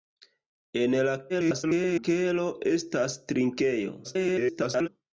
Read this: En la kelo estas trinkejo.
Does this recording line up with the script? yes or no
no